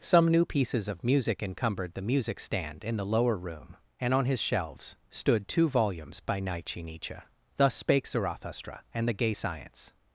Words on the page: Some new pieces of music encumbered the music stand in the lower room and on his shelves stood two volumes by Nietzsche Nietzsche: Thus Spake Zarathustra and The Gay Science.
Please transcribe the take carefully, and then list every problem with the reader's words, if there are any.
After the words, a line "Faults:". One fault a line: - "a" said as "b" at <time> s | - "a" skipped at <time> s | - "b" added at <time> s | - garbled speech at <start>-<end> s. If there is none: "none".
Some new pieces of music encumbered the music stand in the lower room and on his shelves stood two volumes by Nietzsche Nietzsche: Thus Spake Zarathustra and The Gay Science.
Faults:
none